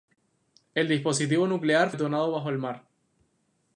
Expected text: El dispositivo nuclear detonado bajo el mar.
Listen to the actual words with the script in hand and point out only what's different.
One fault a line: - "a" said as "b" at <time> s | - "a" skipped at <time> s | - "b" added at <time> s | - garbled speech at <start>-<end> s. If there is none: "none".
none